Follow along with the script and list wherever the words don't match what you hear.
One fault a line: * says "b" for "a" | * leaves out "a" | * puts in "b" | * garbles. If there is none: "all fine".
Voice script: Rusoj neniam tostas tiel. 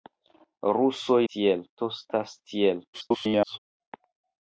* says "tiel" for "neniam"
* garbles